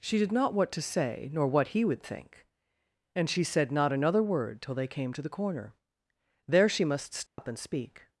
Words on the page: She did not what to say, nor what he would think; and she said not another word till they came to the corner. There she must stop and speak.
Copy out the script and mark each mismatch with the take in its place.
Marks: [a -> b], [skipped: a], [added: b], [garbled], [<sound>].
She did not what to say, nor what he would think; and she said not another word till they came to the corner. There she must stop [dropout] and speak.